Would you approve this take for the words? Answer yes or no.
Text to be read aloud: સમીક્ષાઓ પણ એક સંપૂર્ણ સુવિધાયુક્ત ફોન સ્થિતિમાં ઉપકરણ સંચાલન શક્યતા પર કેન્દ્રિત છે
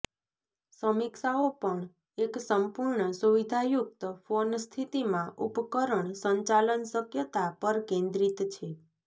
yes